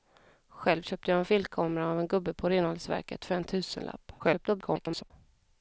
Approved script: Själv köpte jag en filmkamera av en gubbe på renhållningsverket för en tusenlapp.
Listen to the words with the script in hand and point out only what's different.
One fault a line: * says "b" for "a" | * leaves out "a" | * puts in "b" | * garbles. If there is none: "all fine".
* garbles